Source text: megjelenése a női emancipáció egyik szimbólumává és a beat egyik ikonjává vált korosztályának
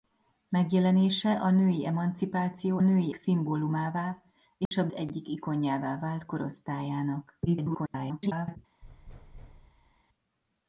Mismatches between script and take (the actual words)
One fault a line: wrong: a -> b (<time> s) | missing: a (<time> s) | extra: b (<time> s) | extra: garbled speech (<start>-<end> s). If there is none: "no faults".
wrong: egyik -> női (2.8 s)
missing: beat (4.9 s)
extra: garbled speech (7.5-8.6 s)